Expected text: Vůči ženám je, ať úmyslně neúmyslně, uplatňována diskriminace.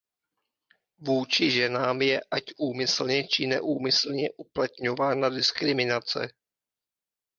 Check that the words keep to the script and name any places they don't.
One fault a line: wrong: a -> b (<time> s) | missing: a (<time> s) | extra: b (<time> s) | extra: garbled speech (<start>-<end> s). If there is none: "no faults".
extra: či (3.3 s)